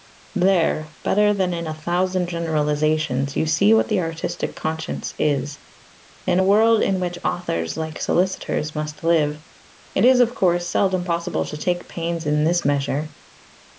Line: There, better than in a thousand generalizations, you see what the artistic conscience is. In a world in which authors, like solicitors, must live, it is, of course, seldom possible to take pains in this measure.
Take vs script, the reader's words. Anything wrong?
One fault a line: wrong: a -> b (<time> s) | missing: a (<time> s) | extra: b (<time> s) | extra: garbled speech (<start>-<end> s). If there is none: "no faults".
no faults